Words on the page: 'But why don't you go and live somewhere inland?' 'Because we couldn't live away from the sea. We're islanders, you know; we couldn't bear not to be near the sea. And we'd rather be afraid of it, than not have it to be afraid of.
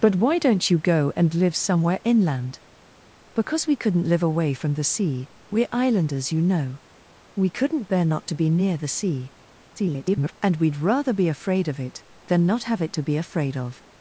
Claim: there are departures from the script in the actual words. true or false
true